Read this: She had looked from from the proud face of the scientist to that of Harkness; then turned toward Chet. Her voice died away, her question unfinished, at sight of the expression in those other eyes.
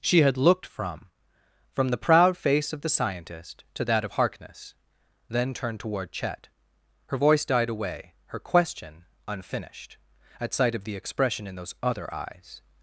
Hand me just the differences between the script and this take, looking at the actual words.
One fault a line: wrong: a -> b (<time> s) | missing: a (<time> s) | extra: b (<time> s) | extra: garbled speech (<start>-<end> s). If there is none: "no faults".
no faults